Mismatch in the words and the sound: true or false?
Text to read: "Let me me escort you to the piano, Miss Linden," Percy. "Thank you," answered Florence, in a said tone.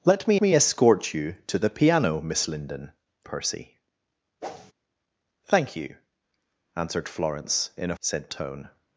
true